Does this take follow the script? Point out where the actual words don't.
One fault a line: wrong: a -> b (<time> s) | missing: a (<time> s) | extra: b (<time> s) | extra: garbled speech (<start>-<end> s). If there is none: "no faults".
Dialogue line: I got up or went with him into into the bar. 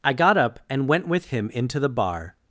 wrong: or -> and (0.7 s)
missing: into (1.8 s)